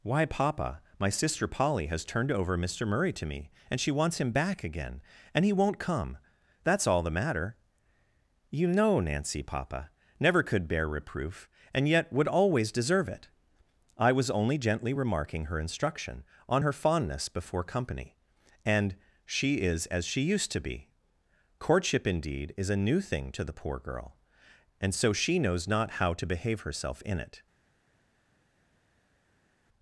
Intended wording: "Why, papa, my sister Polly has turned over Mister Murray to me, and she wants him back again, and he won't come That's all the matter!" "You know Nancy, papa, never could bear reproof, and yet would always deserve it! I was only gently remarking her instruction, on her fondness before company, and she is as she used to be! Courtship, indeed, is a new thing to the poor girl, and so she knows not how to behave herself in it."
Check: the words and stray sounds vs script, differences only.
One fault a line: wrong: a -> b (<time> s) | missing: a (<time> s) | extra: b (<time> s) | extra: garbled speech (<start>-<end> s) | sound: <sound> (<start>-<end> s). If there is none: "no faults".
no faults